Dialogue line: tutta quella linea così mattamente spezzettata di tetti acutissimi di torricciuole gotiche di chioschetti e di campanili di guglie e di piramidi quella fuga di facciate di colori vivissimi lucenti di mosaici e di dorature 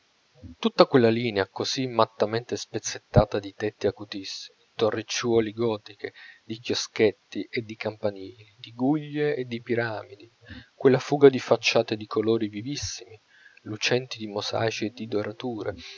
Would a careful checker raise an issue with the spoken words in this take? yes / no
yes